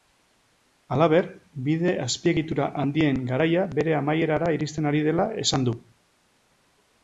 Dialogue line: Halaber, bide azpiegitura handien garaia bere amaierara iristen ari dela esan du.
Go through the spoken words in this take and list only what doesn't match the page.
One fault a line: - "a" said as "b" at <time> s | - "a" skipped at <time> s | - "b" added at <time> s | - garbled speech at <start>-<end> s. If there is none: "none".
none